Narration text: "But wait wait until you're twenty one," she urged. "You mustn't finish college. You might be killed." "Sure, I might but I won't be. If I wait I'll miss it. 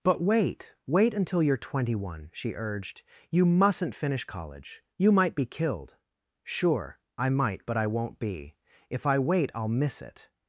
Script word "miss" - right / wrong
right